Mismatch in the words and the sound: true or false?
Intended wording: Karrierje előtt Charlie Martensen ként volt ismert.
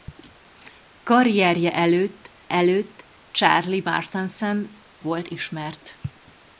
true